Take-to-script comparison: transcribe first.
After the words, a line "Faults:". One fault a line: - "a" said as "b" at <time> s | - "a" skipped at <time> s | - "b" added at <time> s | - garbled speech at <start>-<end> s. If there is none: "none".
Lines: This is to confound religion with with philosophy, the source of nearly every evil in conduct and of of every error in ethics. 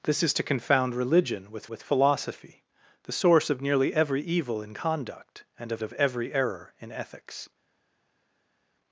This is to confound religion with with philosophy, the source of nearly every evil in conduct and of of every error in ethics.
Faults:
none